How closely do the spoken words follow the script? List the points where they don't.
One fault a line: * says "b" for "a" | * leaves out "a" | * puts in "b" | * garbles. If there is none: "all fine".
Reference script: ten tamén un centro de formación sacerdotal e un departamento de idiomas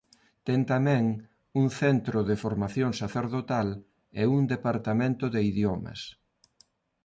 all fine